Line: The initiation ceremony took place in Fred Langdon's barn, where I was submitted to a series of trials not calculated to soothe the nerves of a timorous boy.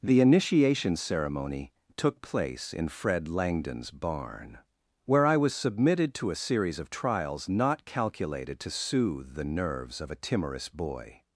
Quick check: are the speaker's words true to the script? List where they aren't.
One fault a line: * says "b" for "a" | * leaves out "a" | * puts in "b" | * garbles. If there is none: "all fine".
all fine